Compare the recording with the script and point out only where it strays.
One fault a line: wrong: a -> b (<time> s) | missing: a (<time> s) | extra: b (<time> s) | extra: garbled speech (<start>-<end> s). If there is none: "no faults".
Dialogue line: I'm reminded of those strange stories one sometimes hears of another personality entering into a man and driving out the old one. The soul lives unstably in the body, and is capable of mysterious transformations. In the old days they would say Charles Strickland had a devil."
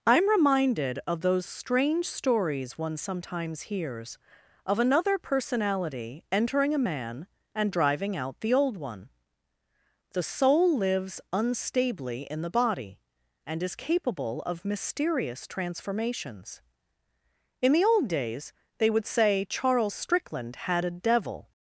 missing: into (6.7 s)